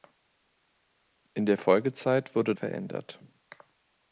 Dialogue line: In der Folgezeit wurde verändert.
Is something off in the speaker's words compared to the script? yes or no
no